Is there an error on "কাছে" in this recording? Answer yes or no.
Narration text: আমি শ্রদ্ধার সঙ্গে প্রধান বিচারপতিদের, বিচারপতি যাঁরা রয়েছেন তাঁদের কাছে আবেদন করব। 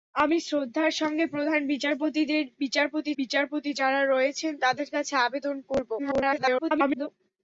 no